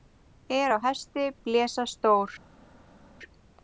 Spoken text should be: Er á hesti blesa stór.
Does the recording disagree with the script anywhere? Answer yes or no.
no